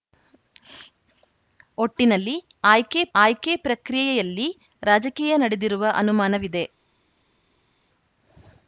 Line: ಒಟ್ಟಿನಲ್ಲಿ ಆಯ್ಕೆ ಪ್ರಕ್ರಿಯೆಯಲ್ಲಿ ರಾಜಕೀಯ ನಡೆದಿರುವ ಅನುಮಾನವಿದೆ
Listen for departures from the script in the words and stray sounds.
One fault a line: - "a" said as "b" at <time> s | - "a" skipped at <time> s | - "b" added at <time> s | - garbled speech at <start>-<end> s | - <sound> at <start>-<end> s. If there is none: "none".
- "ಆಯ್ಕೆ" added at 3.1 s